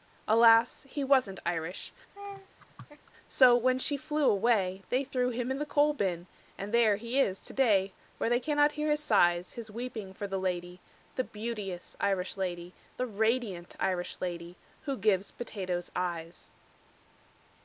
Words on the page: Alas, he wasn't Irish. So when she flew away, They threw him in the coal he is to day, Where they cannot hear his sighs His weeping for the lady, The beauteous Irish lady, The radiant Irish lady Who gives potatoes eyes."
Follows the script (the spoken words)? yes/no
no